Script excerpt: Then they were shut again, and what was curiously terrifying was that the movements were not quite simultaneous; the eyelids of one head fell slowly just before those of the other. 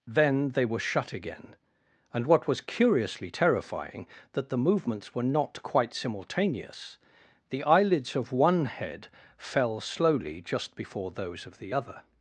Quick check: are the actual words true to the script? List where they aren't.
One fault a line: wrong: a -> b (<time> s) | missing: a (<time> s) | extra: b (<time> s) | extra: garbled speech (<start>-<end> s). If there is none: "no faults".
missing: was (4.1 s)